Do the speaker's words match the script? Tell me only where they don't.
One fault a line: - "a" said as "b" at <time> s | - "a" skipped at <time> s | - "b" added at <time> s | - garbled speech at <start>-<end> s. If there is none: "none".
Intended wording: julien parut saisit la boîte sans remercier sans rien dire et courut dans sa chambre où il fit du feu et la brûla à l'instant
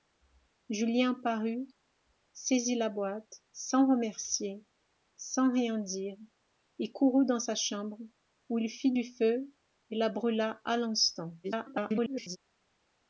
- garbled speech at 11.4-12.4 s